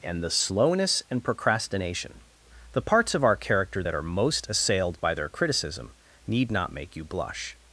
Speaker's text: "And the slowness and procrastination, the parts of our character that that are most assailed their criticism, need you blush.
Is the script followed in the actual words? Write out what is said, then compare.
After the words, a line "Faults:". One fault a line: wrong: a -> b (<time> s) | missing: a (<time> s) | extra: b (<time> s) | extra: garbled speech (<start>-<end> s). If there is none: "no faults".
"And the slowness and procrastination, the parts of our character that are most assailed by their criticism, need not make you blush.
Faults:
missing: that (3.9 s)
extra: by (5.0 s)
extra: not make (6.5 s)